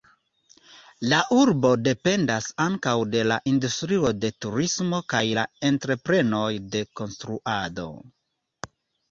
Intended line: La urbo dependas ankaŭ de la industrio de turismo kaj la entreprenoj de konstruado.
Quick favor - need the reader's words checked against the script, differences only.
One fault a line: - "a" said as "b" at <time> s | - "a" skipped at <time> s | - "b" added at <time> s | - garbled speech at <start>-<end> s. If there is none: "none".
none